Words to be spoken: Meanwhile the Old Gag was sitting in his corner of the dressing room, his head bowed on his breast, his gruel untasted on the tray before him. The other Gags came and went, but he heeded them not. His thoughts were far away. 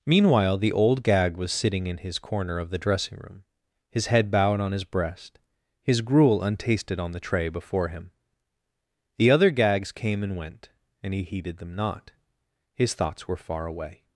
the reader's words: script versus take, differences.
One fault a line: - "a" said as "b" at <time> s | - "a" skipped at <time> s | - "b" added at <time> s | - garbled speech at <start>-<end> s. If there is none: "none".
- "but" said as "and" at 11.0 s